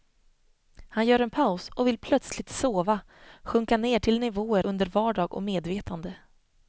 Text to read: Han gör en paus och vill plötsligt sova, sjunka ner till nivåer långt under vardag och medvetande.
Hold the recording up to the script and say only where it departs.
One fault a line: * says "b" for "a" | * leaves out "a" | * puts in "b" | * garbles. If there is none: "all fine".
* leaves out "långt"